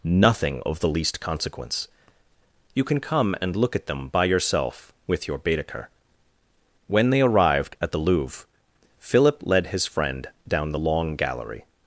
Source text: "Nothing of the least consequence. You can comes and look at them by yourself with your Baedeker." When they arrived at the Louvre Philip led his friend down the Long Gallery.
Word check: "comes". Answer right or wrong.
wrong